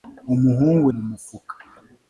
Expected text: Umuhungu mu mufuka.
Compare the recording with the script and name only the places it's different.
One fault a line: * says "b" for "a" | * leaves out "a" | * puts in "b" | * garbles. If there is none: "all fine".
all fine